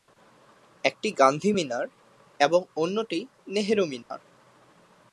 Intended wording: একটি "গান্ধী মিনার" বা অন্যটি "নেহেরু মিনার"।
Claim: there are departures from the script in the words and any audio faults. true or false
true